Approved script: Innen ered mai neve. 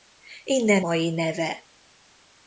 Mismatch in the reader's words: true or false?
true